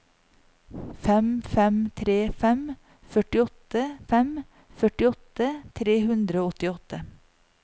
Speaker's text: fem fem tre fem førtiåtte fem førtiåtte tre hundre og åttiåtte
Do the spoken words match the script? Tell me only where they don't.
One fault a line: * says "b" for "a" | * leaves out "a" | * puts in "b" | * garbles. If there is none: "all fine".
all fine